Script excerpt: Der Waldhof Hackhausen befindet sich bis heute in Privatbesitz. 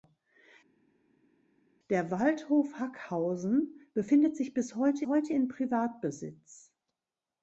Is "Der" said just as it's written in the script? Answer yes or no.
yes